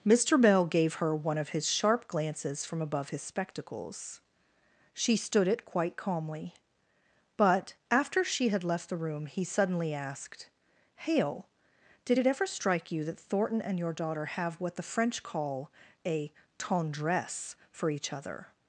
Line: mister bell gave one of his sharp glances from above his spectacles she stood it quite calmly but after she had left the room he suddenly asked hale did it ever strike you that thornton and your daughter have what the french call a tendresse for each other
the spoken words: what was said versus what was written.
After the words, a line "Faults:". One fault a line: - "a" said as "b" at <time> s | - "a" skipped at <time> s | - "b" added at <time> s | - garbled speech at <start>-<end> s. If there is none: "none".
mister bell gave her one of his sharp glances from above his spectacles she stood it quite calmly but after she had left the room he suddenly asked hale did it ever strike you that thornton and your daughter have what the french call a tendresse for each other
Faults:
- "her" added at 0.9 s